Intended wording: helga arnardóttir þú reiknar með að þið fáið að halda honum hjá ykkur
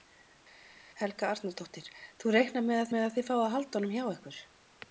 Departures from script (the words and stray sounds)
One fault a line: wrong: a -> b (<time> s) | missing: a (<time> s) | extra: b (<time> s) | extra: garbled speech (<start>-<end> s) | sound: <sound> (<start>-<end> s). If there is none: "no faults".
extra: með að (2.9 s)